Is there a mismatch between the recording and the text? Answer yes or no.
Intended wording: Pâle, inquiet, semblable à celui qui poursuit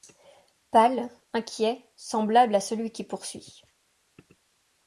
no